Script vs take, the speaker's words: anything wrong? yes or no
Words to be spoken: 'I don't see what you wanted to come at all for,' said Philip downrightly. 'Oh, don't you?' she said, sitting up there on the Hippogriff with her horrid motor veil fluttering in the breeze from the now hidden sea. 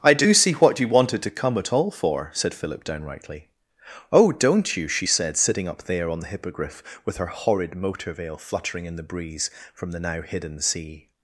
yes